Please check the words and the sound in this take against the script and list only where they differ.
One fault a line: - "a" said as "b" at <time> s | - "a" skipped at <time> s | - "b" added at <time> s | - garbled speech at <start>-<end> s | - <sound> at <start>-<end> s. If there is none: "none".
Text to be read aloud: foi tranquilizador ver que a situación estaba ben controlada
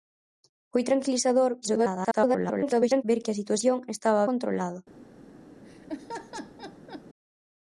- garbled speech at 1.6-3.0 s
- "ben" skipped at 4.3 s
- laugh at 5.6-7.0 s